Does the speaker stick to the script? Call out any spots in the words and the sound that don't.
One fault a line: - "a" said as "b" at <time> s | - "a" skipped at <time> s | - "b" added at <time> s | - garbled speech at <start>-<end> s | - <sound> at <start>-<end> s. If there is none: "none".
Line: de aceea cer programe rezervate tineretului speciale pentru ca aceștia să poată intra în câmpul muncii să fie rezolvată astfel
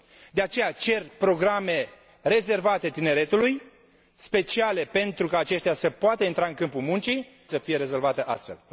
none